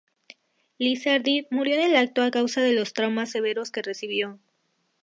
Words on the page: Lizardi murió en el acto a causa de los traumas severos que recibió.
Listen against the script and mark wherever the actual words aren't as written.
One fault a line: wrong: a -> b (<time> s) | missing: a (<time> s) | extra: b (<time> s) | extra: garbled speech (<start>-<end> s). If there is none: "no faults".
no faults